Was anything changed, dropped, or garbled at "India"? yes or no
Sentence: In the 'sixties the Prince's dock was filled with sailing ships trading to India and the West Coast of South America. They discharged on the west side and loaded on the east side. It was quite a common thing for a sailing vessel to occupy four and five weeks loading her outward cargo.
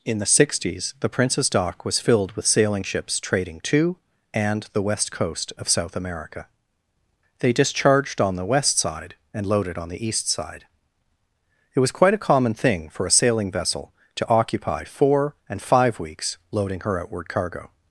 yes